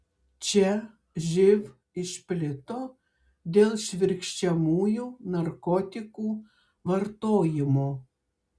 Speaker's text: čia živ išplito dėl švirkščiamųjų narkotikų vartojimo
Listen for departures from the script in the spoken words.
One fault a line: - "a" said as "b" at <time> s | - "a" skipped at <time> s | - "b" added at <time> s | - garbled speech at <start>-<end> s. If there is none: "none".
none